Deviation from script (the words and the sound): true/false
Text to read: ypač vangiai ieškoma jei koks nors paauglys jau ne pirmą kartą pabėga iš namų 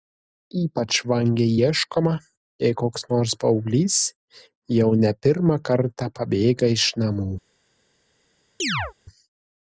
true